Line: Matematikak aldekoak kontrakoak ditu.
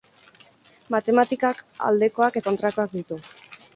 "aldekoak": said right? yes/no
yes